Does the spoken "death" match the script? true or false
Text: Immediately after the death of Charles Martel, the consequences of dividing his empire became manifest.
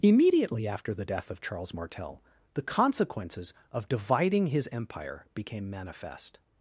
true